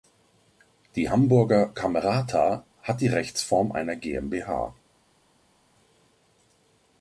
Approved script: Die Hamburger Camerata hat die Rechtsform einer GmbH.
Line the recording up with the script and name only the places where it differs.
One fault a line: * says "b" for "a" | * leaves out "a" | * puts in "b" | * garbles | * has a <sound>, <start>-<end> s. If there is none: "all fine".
all fine